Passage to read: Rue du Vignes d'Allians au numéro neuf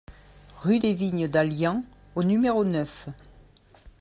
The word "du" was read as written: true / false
false